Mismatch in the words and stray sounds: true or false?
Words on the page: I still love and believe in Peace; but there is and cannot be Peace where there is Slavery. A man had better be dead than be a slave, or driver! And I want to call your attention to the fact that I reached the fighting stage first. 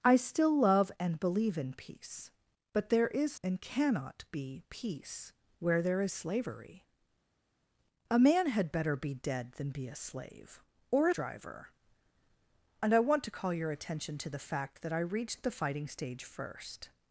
false